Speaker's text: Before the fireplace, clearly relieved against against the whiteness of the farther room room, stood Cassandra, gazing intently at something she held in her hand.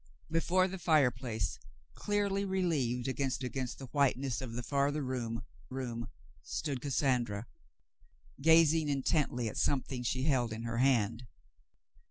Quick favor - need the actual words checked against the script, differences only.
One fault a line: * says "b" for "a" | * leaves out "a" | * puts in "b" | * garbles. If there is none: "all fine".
all fine